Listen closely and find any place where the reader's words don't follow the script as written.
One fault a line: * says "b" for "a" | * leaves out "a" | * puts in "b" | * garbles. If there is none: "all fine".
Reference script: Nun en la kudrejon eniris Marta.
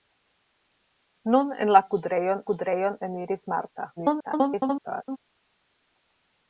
* puts in "kudrejon"
* garbles